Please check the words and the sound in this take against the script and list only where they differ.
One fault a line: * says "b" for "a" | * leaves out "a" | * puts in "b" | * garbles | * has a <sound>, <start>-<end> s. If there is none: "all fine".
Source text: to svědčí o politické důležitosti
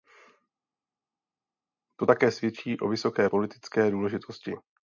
* puts in "také"
* puts in "vysoké"